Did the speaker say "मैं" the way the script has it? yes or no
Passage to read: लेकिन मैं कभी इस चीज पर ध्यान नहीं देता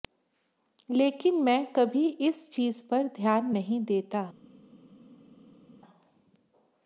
yes